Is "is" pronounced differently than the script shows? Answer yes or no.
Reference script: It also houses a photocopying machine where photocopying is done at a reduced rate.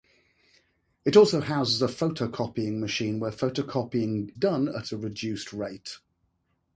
yes